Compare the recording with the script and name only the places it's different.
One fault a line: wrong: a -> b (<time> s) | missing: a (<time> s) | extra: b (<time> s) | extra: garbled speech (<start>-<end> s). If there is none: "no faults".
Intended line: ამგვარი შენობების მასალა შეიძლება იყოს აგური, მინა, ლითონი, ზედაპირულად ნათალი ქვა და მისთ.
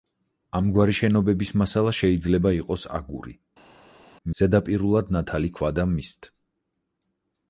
missing: მინა ლითონი (3.4 s)